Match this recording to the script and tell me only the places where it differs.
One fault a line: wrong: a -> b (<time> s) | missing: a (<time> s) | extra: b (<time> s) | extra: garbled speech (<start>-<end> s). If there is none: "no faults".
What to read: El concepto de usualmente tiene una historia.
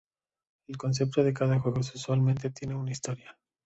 extra: cada juego (1.3 s)